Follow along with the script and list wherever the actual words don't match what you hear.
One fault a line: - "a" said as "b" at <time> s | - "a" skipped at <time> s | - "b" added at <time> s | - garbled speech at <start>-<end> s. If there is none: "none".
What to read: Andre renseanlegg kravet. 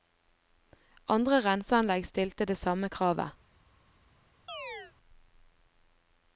- "stilte det samme" added at 2.1 s